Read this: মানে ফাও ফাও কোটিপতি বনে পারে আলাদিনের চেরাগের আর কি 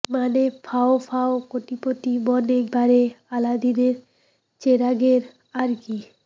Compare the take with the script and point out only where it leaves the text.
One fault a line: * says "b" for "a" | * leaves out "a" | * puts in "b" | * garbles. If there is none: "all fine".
all fine